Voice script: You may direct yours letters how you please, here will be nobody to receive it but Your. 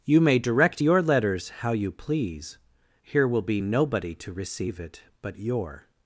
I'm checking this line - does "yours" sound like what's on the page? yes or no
no